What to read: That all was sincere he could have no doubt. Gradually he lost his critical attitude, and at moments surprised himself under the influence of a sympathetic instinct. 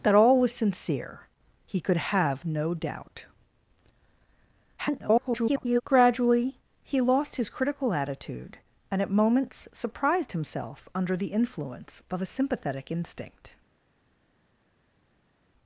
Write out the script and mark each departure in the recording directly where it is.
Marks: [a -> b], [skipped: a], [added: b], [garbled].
That all was sincere he could have no doubt. [garbled] Gradually he lost his critical attitude, and at moments surprised himself under the influence of a sympathetic instinct.